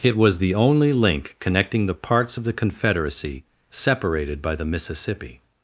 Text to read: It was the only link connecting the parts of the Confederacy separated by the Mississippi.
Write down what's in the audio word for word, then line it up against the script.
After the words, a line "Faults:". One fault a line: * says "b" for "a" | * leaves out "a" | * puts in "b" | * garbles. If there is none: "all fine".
It was the only link connecting the parts of the Confederacy separated by the Mississippi.
Faults:
all fine